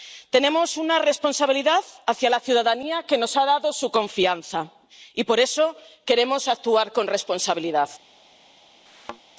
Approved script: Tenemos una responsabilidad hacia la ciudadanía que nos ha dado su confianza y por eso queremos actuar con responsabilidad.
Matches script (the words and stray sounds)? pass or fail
fail